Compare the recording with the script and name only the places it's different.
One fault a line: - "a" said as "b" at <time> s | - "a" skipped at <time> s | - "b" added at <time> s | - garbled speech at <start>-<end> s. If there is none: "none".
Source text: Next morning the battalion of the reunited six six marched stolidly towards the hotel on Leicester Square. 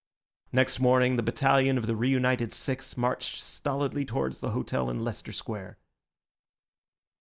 - "six" skipped at 3.0 s
- "on" said as "in" at 4.9 s